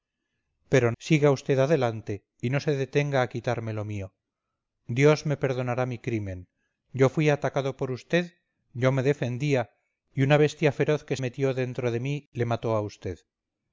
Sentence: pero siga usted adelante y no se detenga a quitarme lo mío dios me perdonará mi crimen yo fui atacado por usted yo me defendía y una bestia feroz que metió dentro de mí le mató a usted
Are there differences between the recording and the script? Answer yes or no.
no